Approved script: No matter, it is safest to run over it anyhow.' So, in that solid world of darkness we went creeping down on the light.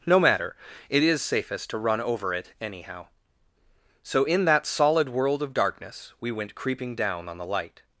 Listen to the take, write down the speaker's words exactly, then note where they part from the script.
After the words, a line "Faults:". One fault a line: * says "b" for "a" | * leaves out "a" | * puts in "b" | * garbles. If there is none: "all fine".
No matter, it is safest to run over it anyhow.' So, in that solid world of darkness we went creeping down on the light.
Faults:
all fine